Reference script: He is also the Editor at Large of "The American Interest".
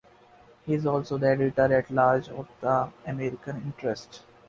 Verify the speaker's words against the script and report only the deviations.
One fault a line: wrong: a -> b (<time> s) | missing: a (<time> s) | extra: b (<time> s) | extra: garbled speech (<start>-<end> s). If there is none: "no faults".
no faults